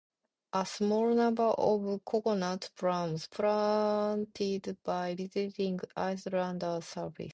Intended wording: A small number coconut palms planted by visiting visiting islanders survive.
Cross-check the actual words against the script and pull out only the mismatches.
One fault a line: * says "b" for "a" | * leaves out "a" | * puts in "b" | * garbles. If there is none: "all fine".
* puts in "of"
* leaves out "visiting"